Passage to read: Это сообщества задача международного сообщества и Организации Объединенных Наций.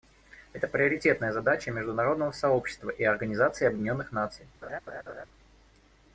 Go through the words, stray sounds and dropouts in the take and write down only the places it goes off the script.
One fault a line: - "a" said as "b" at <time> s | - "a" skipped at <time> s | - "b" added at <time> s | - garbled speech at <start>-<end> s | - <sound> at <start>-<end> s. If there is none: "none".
- "сообщества" said as "приоритетная" at 0.7 s
- laugh at 4.6-5.3 s